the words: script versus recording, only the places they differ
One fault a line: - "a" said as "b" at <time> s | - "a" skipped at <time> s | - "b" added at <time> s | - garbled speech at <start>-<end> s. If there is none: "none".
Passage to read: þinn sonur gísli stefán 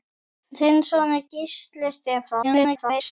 - garbled speech at 2.4-3.1 s